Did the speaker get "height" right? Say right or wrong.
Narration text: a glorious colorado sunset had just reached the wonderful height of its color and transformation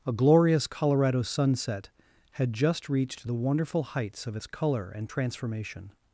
wrong